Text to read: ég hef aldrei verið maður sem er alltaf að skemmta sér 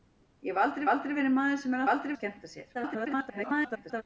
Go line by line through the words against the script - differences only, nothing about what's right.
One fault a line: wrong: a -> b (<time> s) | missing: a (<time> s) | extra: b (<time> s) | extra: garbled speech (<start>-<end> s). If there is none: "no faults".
extra: aldrei (0.9 s)
wrong: alltaf -> aldrei (1.9 s)
extra: garbled speech (2.7-4.0 s)